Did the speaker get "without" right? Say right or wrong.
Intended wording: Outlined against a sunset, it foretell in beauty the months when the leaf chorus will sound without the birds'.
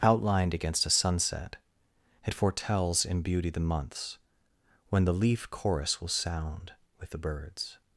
wrong